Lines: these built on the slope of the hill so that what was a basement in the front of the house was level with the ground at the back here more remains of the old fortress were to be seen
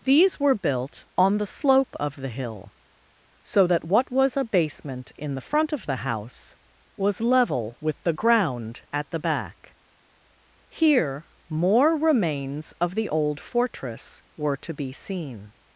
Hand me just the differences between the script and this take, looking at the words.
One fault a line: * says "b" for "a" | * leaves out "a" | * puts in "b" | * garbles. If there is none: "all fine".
* puts in "were"